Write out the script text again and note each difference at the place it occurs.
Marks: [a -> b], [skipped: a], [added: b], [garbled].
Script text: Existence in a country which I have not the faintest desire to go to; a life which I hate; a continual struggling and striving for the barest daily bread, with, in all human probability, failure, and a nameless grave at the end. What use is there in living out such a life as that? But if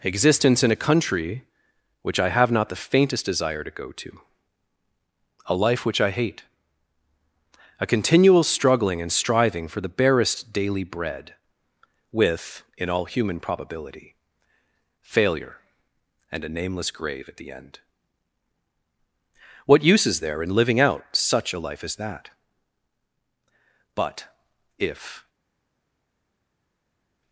Existence in a country which I have not the faintest desire to go to; a life which I hate; a continual struggling and striving for the barest daily bread, with, in all human probability, failure, and a nameless grave at the end. What use is there in living out such a life as that? But if